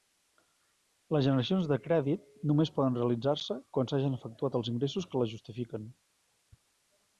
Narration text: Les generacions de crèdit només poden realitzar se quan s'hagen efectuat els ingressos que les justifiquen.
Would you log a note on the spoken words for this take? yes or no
no